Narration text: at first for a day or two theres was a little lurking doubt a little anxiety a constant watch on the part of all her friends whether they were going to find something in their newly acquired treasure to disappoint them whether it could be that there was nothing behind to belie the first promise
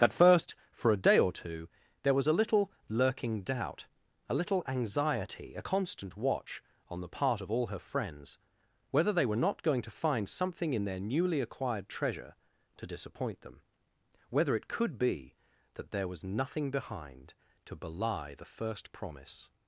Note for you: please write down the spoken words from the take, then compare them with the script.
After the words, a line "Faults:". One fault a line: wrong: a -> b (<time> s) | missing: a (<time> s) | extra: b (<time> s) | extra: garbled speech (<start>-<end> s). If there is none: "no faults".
at first for a day or two there was a little lurking doubt a little anxiety a constant watch on the part of all her friends whether they were not going to find something in their newly acquired treasure to disappoint them whether it could be that there was nothing behind to belie the first promise
Faults:
wrong: theres -> there (2.0 s)
extra: not (9.4 s)